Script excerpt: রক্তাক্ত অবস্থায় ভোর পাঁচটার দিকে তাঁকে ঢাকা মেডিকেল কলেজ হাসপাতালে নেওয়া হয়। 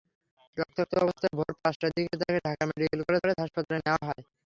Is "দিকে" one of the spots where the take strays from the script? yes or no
no